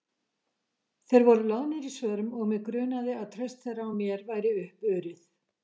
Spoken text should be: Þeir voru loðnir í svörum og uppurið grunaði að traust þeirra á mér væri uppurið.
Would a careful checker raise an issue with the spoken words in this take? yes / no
yes